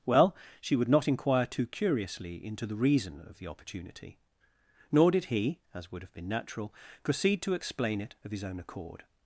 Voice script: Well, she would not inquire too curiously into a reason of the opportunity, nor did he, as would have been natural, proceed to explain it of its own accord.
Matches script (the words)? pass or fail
fail